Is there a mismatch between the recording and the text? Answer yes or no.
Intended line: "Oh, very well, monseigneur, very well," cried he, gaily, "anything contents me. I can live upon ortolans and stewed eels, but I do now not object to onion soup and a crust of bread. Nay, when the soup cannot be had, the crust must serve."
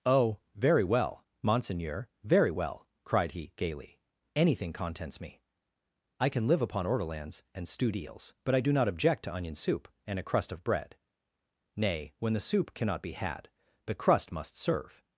yes